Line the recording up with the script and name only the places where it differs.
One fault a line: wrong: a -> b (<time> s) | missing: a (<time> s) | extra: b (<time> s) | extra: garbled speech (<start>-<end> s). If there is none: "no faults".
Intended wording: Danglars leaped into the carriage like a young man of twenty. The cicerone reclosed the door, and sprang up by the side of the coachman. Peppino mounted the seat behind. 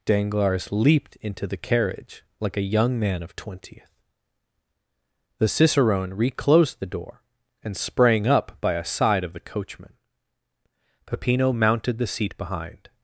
wrong: twenty -> twentieth (3.4 s)
wrong: the -> a (8.7 s)